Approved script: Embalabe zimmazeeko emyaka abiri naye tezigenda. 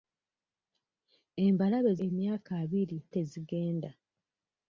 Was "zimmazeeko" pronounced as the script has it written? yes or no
no